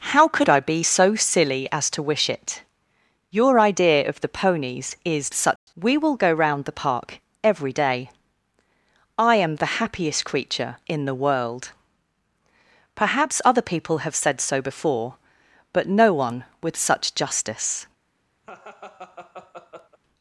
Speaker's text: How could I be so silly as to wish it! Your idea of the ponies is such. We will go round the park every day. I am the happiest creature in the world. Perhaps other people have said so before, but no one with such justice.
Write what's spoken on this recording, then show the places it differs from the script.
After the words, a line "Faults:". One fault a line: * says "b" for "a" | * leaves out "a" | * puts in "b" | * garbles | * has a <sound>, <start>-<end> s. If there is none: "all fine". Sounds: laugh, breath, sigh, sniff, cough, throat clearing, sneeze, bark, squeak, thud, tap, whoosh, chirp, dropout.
How could I be so silly as to wish it! Your idea of the ponies is such. We will go round the park every day. I am the happiest creature in the world. Perhaps other people have said so before, but no one with such justice.
Faults:
* has a dropout, 5.6-5.7 s
* has a laugh, 18.4-20.0 s